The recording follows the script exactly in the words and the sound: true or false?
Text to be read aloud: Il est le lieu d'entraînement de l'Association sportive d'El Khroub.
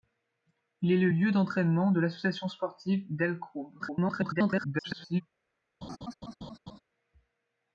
false